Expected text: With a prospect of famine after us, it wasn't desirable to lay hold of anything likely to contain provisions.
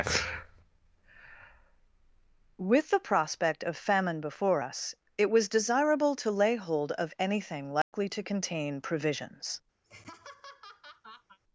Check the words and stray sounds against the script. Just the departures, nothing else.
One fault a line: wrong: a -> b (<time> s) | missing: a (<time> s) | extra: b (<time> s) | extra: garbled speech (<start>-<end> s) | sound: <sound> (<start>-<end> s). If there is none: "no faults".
wrong: a -> the (2.9 s)
wrong: after -> before (4.2 s)
wrong: wasn't -> was (5.3 s)
sound: dropout (7.8-7.9 s)
sound: laugh (9.8-11.4 s)